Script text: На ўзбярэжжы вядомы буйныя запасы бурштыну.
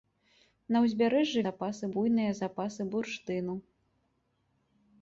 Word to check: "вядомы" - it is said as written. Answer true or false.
false